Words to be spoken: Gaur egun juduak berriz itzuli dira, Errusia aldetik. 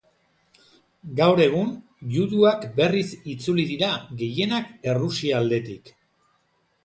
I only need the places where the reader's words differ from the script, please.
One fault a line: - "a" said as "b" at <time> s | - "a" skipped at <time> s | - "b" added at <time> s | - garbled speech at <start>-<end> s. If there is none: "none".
- "gehienak" added at 4.2 s